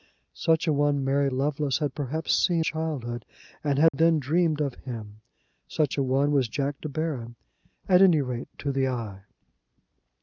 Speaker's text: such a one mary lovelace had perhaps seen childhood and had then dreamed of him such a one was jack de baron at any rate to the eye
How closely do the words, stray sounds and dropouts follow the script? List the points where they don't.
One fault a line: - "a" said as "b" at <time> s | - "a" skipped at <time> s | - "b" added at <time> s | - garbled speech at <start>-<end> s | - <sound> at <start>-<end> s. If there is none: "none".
- dropout at 3.9-3.9 s